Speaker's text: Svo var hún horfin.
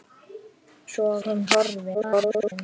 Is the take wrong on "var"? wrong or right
wrong